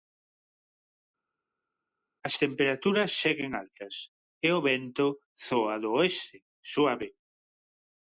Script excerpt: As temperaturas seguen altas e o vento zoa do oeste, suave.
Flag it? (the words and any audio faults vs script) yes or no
no